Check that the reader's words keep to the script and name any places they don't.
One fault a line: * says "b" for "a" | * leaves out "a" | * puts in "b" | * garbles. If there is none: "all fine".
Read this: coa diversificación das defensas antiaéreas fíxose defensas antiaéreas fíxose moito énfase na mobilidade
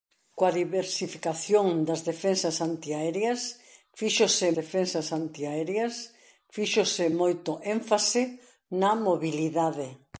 all fine